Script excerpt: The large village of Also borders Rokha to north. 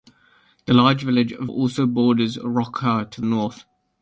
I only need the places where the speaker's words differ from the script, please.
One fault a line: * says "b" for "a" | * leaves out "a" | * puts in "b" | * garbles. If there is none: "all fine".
all fine